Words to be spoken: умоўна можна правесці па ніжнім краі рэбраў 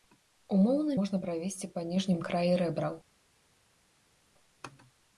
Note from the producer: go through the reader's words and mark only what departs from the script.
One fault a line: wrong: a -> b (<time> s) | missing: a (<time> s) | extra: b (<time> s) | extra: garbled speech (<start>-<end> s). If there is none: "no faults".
no faults